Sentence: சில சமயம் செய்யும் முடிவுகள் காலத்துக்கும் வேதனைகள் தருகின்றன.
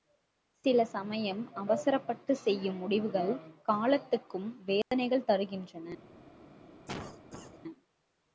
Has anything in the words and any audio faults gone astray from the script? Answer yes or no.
yes